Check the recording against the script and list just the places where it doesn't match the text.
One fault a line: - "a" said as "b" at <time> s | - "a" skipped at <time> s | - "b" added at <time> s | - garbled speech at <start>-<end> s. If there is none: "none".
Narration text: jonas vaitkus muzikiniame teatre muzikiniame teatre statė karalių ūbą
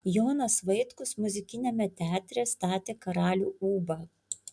- "muzikiniame teatre" skipped at 2.5 s